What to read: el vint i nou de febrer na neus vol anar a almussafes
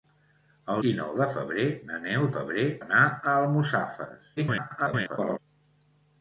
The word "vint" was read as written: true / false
false